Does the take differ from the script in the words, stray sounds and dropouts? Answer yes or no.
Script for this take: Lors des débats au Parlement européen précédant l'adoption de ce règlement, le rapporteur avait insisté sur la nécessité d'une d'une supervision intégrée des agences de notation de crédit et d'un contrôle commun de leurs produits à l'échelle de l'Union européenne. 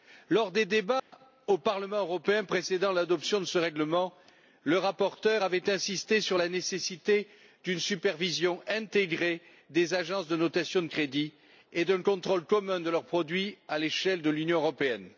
yes